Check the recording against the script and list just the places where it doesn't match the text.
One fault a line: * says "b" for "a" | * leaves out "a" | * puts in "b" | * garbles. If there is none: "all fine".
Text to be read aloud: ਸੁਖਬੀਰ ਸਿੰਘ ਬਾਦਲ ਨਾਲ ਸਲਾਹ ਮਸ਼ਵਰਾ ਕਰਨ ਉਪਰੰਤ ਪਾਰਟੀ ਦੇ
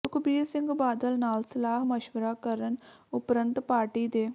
all fine